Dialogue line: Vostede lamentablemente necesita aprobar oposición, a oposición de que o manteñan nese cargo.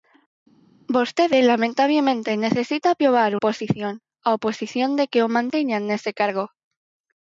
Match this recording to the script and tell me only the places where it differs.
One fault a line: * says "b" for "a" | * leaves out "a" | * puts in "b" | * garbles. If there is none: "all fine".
all fine